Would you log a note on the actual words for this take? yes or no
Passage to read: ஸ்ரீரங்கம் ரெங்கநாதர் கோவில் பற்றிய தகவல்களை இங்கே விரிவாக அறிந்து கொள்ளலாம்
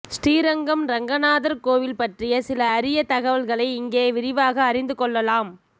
yes